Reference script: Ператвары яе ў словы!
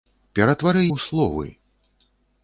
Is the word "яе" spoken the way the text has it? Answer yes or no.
no